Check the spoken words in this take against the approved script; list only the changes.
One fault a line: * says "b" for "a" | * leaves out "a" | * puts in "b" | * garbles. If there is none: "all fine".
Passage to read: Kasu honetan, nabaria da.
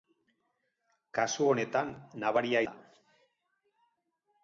all fine